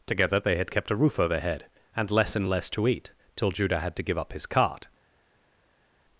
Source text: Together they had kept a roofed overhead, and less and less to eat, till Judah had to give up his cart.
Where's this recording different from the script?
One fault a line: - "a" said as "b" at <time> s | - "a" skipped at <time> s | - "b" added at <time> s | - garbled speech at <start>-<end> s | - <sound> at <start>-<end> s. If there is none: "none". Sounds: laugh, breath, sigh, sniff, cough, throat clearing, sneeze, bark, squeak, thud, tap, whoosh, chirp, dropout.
- "roofed" said as "roof" at 0.9 s